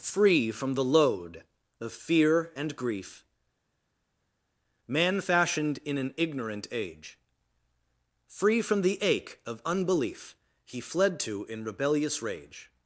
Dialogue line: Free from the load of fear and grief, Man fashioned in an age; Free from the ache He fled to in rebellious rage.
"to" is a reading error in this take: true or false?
false